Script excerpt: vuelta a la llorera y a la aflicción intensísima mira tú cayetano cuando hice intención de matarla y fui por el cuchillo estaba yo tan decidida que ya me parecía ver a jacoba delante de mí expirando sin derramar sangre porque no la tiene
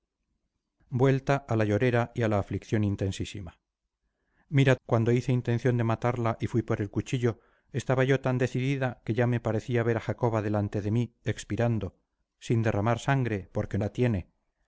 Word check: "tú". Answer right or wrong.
wrong